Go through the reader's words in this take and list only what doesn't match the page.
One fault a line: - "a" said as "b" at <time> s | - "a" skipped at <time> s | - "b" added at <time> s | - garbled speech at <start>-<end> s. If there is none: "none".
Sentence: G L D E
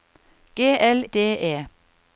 none